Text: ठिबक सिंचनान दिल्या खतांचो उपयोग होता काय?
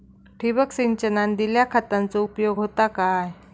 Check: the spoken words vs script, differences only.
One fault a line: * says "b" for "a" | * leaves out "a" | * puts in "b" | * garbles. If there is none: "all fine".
all fine